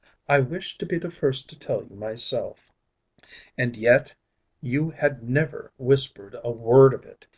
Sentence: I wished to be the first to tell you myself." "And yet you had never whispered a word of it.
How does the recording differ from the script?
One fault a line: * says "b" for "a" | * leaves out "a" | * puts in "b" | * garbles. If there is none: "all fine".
all fine